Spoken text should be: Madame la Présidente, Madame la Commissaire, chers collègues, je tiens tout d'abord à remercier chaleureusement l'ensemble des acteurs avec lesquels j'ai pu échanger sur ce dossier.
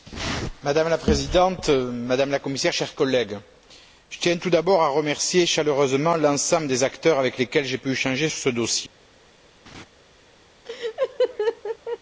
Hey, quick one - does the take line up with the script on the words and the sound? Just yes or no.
no